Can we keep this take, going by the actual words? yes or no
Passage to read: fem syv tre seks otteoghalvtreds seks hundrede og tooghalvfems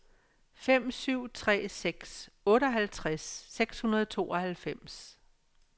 yes